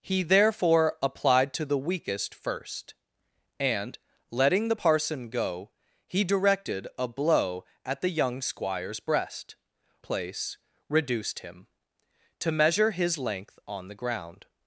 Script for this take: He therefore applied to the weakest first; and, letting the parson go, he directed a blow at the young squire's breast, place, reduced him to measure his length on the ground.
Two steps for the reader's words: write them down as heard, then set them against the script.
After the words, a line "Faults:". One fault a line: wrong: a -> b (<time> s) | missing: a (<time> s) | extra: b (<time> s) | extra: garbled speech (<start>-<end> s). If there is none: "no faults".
He therefore applied to the weakest first; and, letting the parson go, he directed a blow at the young squire's breast, place, reduced him to measure his length on the ground.
Faults:
no faults